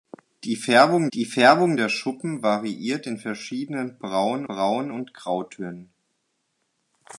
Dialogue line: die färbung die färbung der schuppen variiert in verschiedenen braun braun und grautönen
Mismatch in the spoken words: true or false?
false